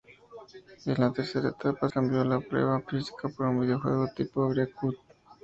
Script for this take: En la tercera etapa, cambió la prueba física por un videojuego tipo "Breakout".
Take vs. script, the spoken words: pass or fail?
pass